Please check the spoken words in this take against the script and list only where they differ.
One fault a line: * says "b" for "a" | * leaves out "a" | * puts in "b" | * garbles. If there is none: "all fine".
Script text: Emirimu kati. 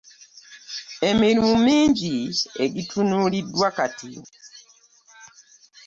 * puts in "mingi egitunuuliddwa"